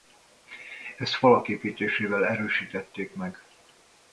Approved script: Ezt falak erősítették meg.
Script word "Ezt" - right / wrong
right